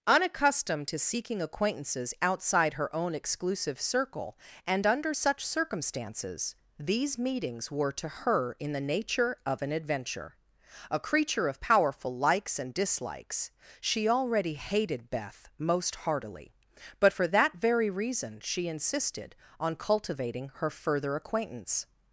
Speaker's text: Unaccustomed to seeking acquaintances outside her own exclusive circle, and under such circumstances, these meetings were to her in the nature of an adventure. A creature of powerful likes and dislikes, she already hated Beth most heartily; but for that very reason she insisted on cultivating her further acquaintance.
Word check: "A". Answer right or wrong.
right